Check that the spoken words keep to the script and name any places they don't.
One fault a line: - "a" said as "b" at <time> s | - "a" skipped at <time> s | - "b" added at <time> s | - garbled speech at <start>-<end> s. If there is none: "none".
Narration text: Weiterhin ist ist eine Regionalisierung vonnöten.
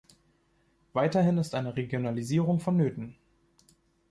- "ist" skipped at 1.5 s